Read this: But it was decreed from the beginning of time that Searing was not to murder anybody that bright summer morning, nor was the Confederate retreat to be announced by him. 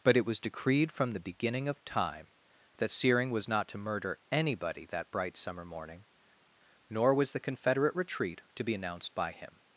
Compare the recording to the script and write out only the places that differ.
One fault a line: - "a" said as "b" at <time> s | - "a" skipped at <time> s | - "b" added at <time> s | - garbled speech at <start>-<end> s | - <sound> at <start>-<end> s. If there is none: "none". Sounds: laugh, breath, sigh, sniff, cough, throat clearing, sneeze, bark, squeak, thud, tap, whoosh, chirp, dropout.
none